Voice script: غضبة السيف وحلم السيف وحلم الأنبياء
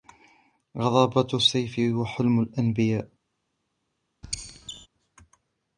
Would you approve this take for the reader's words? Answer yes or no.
no